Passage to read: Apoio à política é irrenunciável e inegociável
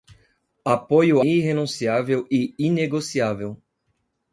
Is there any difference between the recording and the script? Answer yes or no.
yes